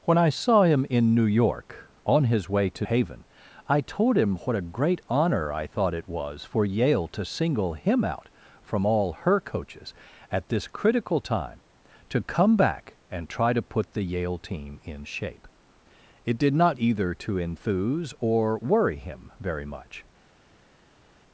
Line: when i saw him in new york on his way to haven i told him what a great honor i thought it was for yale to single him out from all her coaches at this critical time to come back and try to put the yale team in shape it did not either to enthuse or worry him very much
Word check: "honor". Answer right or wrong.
right